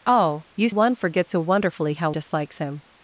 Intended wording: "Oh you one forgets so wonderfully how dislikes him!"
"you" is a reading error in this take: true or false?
false